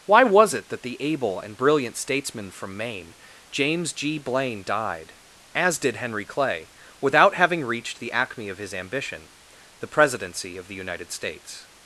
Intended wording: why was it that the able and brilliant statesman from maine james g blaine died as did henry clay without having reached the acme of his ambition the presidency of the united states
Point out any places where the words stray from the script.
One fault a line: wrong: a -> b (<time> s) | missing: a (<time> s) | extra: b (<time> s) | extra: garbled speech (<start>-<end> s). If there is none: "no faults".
no faults